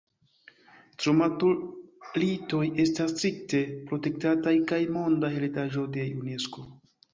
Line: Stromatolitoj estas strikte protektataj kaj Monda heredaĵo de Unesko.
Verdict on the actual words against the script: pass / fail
pass